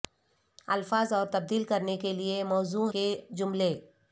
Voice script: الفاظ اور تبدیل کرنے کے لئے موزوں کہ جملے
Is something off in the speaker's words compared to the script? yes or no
no